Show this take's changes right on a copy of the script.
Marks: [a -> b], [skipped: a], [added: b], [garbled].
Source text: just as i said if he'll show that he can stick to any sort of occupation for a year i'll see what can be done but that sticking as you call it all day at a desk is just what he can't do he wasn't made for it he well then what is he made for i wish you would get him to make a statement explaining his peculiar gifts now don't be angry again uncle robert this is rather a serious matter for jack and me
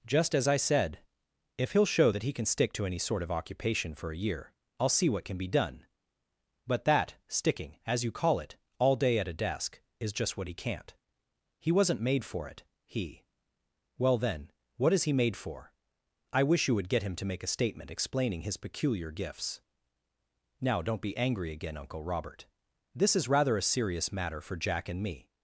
just as i said if he'll show that he can stick to any sort of occupation for a year i'll see what can be done but that sticking as you call it all day at a desk is just what he can't [skipped: do] he wasn't made for it he well then what is he made for i wish you would get him to make a statement explaining his peculiar gifts now don't be angry again uncle robert this is rather a serious matter for jack and me